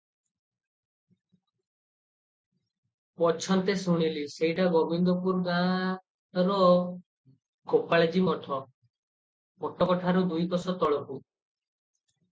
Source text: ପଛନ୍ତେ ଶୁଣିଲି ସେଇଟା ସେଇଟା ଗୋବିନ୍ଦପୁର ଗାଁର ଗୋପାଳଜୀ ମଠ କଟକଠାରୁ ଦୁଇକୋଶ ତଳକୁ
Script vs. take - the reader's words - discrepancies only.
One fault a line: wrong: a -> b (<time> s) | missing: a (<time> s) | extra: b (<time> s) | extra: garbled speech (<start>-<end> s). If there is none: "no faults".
missing: ସେଇଟା (4.7 s)